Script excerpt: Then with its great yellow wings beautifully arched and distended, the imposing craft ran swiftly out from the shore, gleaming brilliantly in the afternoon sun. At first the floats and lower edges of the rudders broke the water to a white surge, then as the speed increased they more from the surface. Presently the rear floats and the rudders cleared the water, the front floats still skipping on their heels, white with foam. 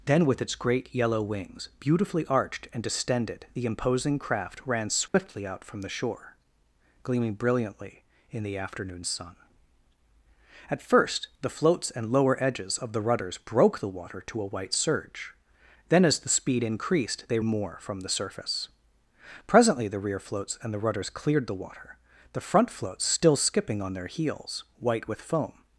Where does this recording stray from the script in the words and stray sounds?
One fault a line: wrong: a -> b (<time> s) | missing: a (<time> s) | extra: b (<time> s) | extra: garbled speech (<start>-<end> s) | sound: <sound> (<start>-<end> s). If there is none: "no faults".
sound: dropout (5.1-5.1 s)